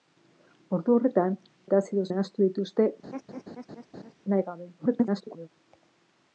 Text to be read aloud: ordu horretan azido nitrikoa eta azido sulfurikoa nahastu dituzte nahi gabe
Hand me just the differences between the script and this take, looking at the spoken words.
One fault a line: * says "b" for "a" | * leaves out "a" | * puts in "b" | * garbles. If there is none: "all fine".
* leaves out "azido nitrikoa"
* leaves out "sulfurikoa"
* garbles